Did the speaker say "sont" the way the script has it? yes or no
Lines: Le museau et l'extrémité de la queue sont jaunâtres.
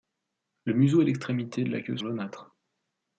no